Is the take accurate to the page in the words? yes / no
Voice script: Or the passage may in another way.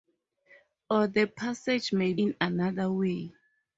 yes